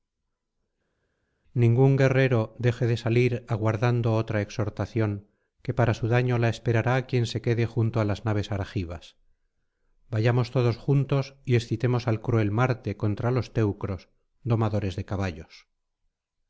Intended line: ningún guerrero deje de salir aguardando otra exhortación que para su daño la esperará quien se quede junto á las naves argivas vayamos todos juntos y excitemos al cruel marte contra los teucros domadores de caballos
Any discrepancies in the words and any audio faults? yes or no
no